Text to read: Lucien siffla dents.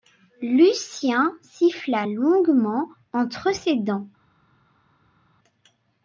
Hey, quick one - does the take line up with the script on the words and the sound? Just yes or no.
no